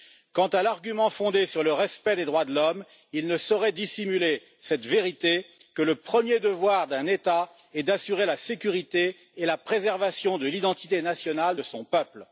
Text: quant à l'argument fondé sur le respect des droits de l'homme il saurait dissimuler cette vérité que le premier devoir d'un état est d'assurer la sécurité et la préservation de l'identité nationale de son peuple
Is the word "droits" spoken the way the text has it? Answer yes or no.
yes